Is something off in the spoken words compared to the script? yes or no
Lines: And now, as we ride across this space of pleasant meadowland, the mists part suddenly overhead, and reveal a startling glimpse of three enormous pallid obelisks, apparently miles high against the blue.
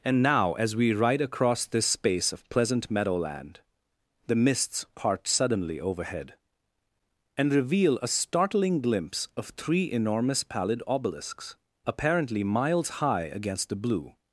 no